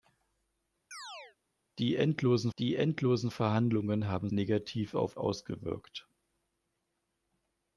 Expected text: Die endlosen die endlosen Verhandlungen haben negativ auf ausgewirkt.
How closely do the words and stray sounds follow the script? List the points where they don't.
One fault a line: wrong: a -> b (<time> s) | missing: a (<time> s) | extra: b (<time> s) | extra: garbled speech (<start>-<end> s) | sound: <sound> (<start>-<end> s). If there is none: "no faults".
sound: chirp (0.9-1.4 s)